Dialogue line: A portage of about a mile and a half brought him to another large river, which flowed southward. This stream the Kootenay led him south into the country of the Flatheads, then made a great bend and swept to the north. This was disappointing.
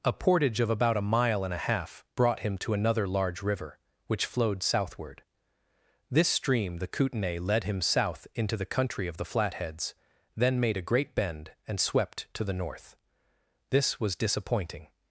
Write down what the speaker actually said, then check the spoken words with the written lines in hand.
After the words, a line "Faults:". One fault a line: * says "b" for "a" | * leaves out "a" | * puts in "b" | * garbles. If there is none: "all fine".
A portage of about a mile and a half brought him to another large river, which flowed southward. This stream the Kootenay led him south into the country of the Flatheads, then made a great bend and swept to the north. This was disappointing.
Faults:
all fine